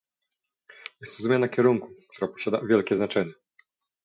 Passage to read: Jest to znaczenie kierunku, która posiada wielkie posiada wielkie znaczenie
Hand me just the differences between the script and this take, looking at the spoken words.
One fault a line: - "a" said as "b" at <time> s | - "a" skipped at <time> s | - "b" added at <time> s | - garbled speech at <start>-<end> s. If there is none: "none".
- "znaczenie" said as "zmiana" at 1.2 s
- "posiada wielkie" skipped at 3.0 s